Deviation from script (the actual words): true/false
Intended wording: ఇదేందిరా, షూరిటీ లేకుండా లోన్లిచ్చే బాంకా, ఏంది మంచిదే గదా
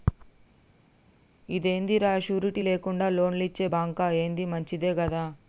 false